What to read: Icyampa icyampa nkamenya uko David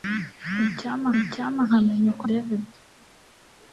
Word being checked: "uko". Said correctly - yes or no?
yes